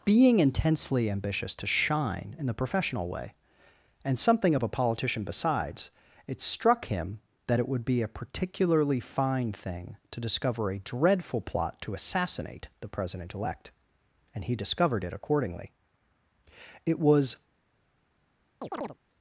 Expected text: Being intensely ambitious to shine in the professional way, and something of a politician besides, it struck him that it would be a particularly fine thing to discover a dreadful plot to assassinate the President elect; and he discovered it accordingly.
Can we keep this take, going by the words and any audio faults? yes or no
no